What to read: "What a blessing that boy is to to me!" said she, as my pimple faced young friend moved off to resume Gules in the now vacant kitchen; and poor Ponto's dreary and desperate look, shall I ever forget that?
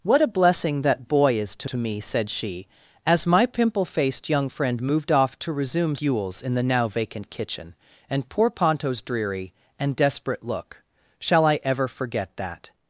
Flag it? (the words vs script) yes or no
no